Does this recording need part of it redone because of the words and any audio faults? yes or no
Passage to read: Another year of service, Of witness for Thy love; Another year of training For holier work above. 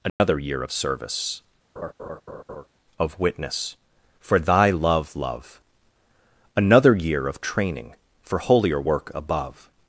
yes